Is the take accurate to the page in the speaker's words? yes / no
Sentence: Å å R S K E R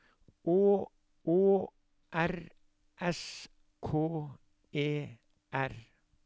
yes